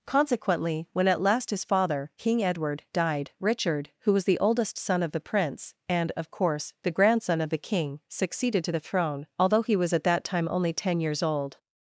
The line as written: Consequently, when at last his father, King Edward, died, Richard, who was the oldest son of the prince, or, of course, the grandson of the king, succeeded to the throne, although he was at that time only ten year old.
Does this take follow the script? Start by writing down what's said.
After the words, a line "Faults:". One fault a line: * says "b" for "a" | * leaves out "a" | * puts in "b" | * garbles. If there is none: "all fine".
Consequently, when at last his father, King Edward, died, Richard, who was the oldest son of the prince, and, of course, the grandson of the king, succeeded to the throne, although he was at that time only ten years old.
Faults:
* says "and" for "or"
* says "years" for "year"